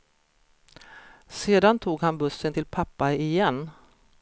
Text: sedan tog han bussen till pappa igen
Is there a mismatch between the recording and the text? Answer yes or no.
no